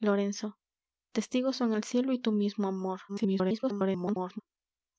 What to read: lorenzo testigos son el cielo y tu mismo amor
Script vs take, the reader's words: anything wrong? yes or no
yes